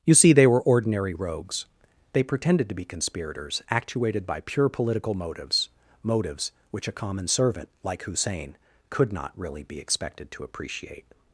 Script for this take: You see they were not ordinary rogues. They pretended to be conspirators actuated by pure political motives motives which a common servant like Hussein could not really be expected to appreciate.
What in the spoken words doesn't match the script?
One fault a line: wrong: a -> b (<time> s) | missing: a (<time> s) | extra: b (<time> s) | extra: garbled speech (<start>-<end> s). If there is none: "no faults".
missing: not (0.6 s)